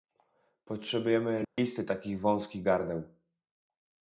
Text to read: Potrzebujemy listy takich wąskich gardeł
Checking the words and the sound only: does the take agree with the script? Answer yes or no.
no